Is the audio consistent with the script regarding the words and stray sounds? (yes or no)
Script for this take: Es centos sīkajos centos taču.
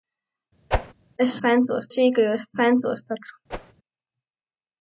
no